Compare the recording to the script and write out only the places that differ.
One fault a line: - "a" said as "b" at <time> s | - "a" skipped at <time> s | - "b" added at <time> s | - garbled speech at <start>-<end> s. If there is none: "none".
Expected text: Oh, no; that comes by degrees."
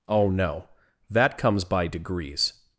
none